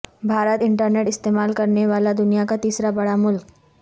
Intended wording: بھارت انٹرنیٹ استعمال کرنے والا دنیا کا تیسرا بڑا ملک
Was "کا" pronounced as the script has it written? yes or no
yes